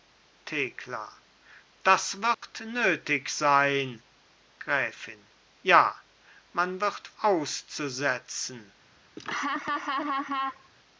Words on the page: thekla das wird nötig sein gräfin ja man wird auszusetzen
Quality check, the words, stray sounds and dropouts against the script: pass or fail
fail